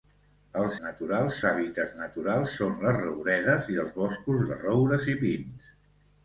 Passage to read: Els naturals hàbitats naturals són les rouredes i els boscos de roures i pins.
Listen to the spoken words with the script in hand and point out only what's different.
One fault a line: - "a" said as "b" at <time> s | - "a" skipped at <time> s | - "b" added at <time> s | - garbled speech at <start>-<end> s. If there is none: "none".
none